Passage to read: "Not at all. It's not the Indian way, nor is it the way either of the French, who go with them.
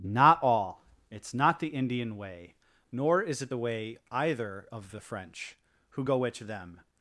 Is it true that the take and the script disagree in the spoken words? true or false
true